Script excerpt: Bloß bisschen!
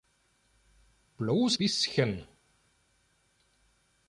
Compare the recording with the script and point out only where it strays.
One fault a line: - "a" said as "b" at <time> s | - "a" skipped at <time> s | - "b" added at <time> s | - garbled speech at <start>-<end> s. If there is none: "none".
none